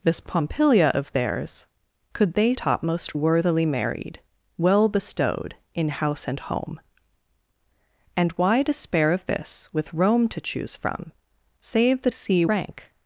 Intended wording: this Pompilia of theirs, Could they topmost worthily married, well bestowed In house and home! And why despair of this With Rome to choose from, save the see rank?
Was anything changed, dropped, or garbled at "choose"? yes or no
no